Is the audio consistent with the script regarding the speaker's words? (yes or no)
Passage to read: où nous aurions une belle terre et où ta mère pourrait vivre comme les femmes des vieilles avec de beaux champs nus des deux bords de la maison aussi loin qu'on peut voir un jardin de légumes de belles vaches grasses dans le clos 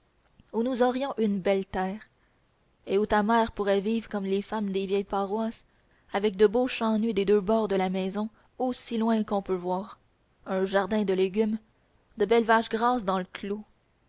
no